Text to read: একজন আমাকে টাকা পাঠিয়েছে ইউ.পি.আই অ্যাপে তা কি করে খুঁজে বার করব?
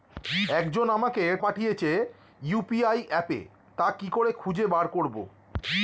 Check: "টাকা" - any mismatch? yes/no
yes